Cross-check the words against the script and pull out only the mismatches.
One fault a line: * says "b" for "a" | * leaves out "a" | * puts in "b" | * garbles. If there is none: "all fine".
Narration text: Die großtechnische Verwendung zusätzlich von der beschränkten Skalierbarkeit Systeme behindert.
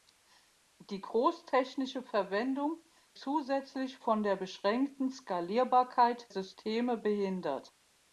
all fine